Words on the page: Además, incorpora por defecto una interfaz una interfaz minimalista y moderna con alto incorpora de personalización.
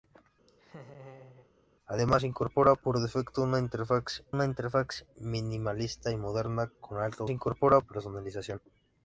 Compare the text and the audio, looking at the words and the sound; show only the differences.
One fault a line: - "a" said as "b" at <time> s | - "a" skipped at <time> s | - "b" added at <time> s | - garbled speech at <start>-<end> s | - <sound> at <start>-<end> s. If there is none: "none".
- laugh at 0.5-1.5 s